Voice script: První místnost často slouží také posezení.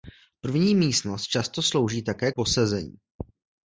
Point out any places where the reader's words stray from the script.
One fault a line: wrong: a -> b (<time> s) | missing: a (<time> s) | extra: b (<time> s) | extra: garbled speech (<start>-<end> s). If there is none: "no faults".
no faults